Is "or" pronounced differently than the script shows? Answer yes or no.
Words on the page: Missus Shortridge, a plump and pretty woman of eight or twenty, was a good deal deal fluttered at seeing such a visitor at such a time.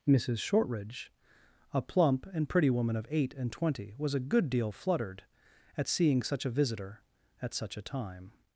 yes